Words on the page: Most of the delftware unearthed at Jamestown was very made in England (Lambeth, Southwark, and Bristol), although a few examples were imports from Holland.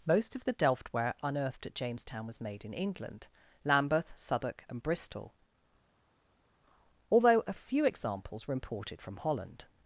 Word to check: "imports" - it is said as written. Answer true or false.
false